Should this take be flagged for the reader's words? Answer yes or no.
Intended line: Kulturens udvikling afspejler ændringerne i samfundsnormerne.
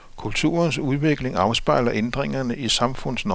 no